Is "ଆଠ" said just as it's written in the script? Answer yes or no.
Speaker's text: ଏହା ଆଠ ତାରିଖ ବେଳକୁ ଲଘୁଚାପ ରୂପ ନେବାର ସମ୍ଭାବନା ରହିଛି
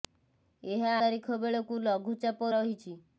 no